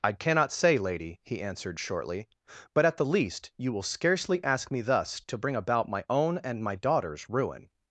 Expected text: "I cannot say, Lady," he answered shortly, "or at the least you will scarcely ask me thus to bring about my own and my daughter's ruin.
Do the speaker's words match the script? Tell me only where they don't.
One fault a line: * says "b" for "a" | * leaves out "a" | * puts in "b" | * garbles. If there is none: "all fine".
* says "but" for "or"